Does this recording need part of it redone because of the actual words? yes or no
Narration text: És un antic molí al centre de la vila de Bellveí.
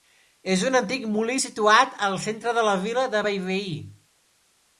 yes